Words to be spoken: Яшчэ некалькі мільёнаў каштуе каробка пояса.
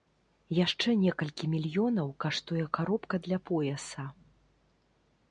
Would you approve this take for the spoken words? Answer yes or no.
no